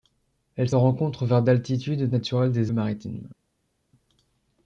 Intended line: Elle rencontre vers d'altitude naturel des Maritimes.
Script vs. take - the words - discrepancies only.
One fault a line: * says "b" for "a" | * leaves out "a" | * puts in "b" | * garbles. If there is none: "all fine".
all fine